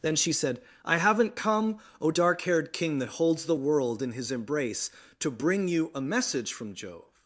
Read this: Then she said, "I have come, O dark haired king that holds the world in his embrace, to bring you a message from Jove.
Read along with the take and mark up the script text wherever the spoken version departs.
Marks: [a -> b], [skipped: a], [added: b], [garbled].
Then she said, "I [have -> haven't] come, O dark haired king that holds the world in his embrace, to bring you a message from Jove.